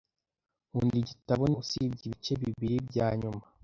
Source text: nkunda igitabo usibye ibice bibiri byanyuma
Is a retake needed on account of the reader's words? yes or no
no